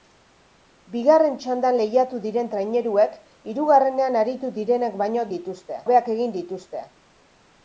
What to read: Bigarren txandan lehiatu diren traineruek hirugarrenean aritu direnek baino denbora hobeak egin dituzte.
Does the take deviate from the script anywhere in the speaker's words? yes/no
yes